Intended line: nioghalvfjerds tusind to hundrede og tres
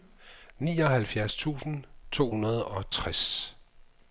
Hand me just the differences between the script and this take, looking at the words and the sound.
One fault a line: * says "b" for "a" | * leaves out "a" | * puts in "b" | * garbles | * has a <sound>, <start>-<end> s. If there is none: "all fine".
all fine